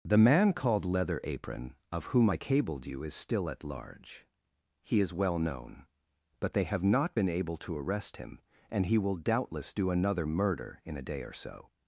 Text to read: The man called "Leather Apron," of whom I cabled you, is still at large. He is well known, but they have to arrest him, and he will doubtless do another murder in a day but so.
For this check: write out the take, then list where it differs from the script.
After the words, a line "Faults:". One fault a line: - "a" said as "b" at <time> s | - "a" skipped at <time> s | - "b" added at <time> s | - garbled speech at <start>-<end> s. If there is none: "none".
The man called "Leather Apron," of whom I cabled you, is still at large. He is well known, but they have not been able to arrest him, and he will doubtless do another murder in a day or so.
Faults:
- "not been able" added at 6.8 s
- "but" said as "or" at 11.2 s